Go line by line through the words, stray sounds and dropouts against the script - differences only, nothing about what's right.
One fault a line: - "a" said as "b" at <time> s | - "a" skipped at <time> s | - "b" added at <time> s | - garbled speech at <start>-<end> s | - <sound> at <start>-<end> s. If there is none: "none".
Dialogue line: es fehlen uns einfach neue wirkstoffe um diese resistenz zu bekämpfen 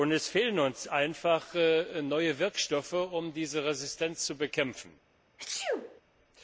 - sneeze at 5.4-6.0 s